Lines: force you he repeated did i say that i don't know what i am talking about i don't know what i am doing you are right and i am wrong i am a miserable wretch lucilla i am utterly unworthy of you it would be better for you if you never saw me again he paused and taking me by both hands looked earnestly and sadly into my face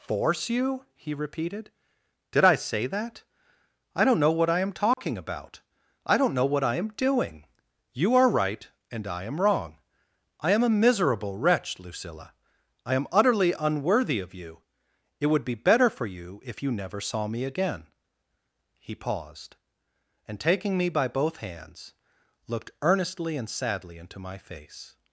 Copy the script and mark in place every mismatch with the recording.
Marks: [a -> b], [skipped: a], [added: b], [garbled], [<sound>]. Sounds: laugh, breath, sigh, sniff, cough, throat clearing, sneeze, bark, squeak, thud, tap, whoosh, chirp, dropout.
force you he repeated did i say that i don't know what i am talking [dropout] about i don't know what i am doing you are right and i am wrong i am a miserable wretch lucilla i am utterly unworthy of you it would be better for you if you never saw me again he paused and taking me by both hands looked earnestly and sadly into my face